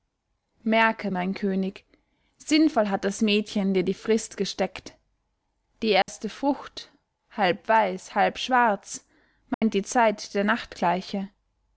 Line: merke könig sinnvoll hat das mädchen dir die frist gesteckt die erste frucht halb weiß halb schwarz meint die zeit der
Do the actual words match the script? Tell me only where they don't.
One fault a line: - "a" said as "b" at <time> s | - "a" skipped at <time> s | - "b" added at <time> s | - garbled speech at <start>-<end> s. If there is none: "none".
- "mein" added at 1.1 s